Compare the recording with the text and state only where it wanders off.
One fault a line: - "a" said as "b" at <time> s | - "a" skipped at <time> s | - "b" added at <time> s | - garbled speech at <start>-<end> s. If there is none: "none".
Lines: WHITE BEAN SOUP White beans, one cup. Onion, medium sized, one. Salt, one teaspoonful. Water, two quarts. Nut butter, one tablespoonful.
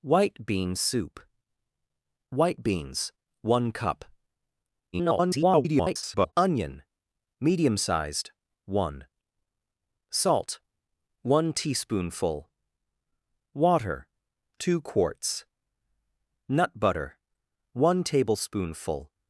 - garbled speech at 4.9-6.3 s